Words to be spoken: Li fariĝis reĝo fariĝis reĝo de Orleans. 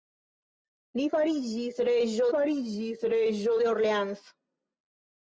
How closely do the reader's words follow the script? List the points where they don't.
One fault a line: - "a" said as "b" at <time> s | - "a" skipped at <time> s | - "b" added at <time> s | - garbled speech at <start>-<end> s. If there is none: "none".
none